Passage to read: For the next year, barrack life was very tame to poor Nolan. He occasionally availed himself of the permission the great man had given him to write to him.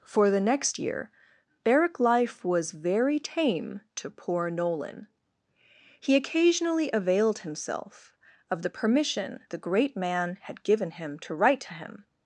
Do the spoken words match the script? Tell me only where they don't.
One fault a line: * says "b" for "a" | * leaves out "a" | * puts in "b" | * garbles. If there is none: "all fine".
all fine